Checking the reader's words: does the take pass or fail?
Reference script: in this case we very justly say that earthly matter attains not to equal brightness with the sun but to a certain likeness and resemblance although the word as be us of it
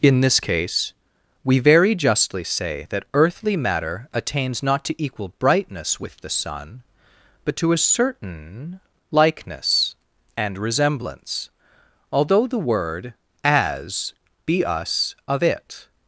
pass